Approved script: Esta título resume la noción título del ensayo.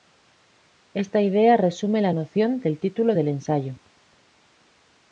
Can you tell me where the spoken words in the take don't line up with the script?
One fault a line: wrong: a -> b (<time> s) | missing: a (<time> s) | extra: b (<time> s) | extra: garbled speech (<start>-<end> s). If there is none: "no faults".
wrong: título -> idea (1.2 s)
extra: del (2.6 s)